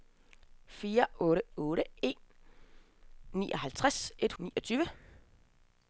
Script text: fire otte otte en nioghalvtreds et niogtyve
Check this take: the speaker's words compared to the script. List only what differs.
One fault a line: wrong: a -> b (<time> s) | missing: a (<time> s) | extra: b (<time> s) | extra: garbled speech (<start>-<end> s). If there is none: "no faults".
no faults